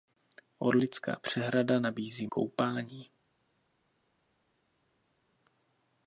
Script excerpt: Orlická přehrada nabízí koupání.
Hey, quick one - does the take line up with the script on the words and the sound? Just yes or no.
yes